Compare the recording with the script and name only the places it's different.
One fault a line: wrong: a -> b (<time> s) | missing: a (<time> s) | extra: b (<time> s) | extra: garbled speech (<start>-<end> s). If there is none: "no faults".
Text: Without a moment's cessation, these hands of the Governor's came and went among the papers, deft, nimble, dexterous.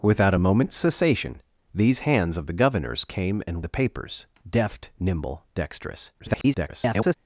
missing: went among (3.7 s)
extra: garbled speech (6.2-7.1 s)